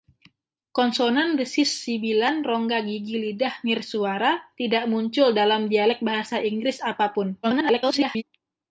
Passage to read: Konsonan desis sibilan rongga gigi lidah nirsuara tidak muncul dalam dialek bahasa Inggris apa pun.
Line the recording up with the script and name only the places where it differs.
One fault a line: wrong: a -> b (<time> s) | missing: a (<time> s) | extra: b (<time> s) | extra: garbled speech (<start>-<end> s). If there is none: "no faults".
extra: garbled speech (7.4-8.2 s)